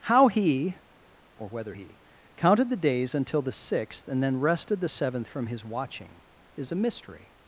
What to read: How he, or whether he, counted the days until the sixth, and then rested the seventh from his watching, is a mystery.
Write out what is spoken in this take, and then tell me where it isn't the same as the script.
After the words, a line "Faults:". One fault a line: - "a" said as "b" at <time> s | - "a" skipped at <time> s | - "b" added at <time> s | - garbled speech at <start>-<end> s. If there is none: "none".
How he, or whether he, counted the days until the sixth, and then rested the seventh from his watching, is a mystery.
Faults:
none